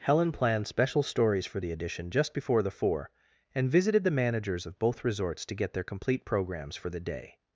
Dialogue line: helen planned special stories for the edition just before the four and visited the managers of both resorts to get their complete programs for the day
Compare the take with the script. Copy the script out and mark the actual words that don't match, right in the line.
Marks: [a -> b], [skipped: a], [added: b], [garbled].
helen planned special stories for the edition just before the four and visited the managers of both resorts to get their complete programs for the day